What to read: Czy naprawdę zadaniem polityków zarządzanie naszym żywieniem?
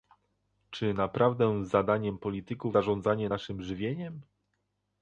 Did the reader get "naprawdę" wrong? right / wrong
right